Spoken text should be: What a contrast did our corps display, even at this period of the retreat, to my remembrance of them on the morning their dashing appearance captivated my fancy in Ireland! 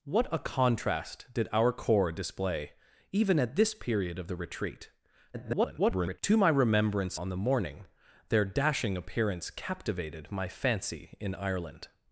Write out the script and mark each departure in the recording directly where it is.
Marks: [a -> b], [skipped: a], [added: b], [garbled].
What a contrast did our corps display, even at this period of the retreat, [garbled] to my remembrance [skipped: of them] on the morning their dashing appearance captivated my fancy in Ireland!